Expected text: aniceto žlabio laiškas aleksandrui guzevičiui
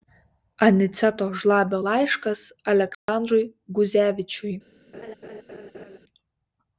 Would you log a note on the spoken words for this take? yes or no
no